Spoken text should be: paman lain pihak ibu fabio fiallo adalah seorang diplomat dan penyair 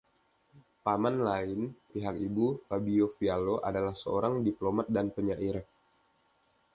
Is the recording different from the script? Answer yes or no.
no